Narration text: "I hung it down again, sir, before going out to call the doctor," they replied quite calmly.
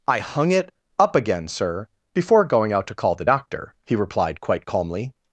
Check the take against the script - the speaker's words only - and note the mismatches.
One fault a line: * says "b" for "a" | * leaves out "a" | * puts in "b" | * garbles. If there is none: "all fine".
* says "up" for "down"
* says "he" for "they"